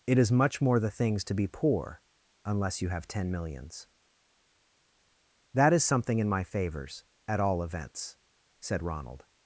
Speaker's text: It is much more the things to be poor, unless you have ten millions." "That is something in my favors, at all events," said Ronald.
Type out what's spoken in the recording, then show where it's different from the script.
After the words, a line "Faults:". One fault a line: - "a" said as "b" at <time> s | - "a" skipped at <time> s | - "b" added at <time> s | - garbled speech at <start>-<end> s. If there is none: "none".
It is much more the things to be poor, unless you have ten millions." "That is something in my favors, at all events," said Ronald.
Faults:
none